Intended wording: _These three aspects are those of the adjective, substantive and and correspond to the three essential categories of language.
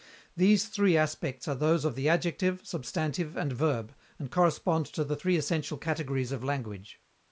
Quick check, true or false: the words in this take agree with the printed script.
false